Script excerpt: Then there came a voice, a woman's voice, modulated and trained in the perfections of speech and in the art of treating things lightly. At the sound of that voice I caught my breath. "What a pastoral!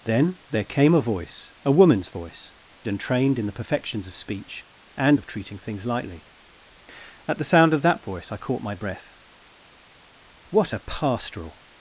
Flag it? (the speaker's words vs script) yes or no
yes